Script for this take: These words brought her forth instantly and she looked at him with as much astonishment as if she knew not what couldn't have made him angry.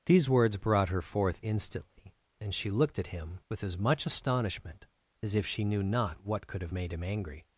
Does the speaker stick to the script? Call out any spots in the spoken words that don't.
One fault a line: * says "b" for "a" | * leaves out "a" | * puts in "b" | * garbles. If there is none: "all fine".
* says "could" for "couldn't"